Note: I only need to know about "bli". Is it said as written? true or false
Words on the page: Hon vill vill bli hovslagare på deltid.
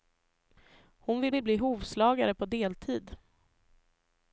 true